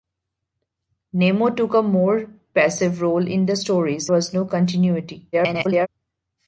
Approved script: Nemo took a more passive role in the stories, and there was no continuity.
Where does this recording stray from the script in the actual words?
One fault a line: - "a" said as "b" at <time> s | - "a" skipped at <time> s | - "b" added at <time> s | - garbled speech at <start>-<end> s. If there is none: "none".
- "and there" skipped at 4.1 s
- garbled speech at 5.3-5.9 s